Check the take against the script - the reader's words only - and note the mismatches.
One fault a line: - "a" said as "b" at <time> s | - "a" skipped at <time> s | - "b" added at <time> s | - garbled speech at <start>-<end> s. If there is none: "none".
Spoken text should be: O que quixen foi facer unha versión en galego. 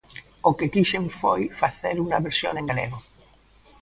none